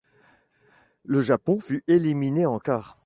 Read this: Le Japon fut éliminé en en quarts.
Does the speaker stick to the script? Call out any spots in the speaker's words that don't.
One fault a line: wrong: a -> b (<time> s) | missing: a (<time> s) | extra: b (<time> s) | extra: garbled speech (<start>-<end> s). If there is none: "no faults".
missing: en (2.6 s)